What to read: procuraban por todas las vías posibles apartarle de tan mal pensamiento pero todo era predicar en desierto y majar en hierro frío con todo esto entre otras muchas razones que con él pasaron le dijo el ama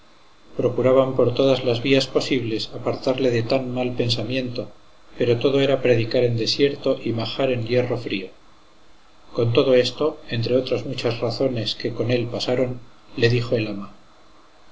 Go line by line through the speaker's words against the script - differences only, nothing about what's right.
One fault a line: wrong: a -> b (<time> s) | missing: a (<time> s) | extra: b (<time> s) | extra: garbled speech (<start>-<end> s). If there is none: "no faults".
no faults